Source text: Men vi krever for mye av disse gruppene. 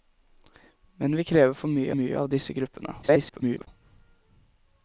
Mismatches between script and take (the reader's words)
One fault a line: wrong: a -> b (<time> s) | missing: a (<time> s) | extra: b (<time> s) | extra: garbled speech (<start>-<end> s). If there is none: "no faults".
extra: mye (2.0 s)
extra: garbled speech (3.0-3.7 s)